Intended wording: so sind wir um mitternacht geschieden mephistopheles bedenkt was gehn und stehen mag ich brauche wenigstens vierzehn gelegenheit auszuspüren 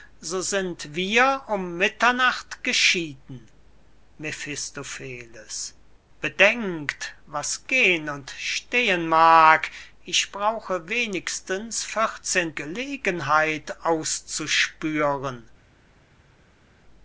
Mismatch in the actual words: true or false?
false